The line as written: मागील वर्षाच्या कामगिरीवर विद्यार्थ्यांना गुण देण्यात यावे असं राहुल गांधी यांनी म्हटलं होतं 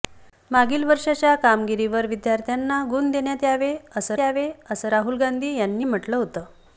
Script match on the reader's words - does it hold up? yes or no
no